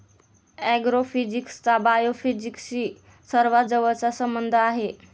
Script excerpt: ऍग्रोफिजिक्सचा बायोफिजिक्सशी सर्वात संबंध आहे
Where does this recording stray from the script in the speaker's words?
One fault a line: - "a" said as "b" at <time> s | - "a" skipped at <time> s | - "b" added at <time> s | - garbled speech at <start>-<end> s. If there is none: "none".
- "जवळचा" added at 3.6 s